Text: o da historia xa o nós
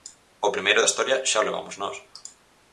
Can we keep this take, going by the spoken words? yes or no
no